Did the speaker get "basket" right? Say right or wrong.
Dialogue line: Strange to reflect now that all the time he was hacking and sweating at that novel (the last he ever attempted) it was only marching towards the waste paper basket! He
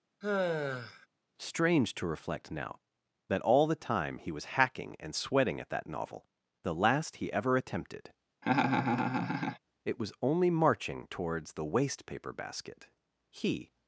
right